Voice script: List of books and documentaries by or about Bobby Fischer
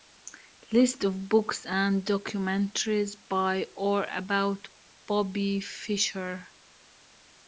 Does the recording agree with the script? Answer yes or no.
yes